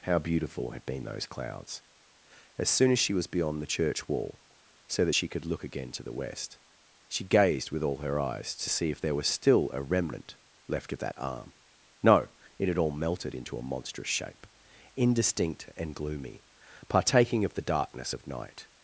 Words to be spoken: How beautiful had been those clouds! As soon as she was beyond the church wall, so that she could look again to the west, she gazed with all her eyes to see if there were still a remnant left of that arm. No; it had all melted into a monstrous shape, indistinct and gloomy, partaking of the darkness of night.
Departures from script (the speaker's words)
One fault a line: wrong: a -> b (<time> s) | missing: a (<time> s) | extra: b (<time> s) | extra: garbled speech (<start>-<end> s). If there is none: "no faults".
wrong: were -> was (9.1 s)